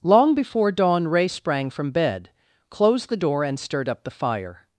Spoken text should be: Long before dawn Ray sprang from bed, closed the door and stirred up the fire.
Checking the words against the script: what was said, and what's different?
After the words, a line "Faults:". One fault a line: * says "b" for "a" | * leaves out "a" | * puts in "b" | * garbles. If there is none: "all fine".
Long before dawn Ray sprang from bed, closed the door and stirred up the fire.
Faults:
all fine